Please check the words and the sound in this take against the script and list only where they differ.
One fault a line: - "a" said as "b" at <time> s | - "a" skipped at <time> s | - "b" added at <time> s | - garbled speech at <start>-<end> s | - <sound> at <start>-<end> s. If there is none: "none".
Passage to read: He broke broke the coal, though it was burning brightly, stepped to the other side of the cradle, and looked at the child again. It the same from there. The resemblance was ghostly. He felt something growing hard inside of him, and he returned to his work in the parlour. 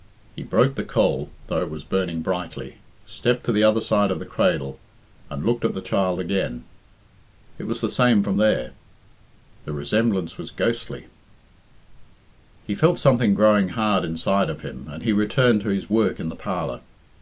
- "broke" skipped at 0.7 s
- "was" added at 7.7 s